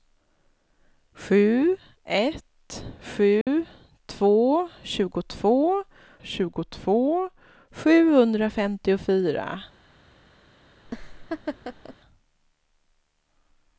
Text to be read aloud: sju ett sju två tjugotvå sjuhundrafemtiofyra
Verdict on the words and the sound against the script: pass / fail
fail